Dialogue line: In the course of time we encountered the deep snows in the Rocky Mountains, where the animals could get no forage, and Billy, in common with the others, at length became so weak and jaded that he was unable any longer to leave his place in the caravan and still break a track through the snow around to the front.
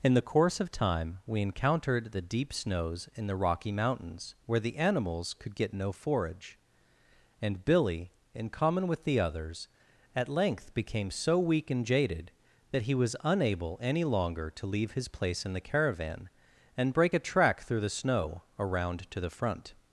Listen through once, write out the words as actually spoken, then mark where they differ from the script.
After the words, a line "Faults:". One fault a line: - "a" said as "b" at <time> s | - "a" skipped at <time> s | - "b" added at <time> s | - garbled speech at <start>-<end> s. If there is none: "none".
In the course of time we encountered the deep snows in the Rocky Mountains, where the animals could get no forage, and Billy, in common with the others, at length became so weak and jaded that he was unable any longer to leave his place in the caravan and break a track through the snow around to the front.
Faults:
- "still" skipped at 16.9 s